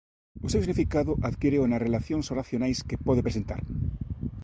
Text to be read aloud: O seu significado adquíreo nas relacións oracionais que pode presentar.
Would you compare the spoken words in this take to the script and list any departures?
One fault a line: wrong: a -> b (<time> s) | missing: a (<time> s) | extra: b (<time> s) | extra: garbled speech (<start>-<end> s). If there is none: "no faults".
no faults